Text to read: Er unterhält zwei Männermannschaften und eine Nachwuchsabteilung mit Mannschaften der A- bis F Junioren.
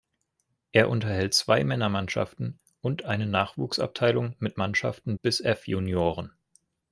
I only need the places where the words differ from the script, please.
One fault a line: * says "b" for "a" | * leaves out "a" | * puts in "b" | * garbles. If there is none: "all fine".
* leaves out "der A"